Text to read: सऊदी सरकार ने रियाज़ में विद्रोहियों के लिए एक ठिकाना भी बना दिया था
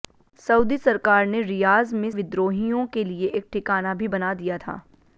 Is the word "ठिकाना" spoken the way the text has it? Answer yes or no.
yes